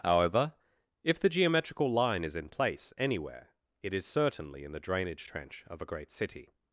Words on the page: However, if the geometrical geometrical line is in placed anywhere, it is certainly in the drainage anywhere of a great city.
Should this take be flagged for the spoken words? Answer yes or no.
yes